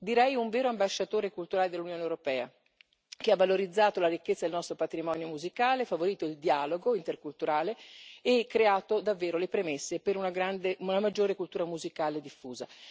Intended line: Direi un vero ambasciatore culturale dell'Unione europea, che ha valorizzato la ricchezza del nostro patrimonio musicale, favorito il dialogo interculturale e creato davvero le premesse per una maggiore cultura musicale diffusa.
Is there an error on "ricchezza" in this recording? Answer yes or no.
no